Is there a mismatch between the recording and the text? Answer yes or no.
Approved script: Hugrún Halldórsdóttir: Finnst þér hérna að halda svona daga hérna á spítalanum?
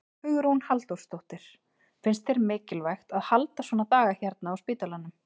yes